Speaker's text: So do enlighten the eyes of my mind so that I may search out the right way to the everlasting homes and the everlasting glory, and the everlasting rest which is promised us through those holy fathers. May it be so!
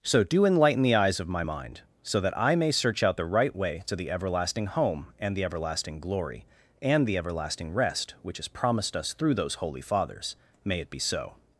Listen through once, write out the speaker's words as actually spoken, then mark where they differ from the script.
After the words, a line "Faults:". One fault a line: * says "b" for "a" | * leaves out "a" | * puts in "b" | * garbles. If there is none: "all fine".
So do enlighten the eyes of my mind so that I may search out the right way to the everlasting home and the everlasting glory, and the everlasting rest which is promised us through those holy fathers. May it be so!
Faults:
* says "home" for "homes"